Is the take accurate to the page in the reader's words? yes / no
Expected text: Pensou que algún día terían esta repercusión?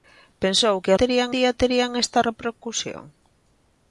no